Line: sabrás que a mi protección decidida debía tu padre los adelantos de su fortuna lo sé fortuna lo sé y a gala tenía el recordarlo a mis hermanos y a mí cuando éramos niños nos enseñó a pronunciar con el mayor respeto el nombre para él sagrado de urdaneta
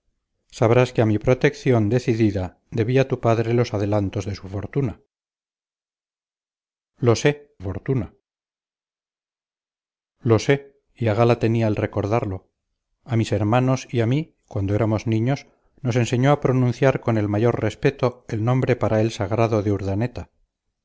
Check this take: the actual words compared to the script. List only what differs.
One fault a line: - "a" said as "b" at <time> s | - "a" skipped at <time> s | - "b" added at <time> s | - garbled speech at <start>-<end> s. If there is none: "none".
none